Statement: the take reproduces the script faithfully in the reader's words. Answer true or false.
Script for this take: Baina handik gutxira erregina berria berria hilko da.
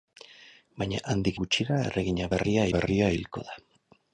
true